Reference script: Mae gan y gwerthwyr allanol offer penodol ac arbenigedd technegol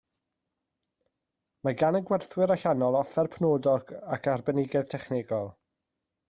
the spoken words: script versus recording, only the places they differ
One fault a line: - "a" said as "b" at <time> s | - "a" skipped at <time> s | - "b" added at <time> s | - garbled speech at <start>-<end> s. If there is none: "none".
none